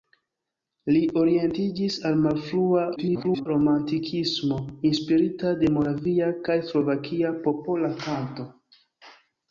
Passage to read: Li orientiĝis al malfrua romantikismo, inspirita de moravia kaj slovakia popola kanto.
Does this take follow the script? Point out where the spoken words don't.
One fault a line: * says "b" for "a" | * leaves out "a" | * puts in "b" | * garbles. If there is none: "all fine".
* garbles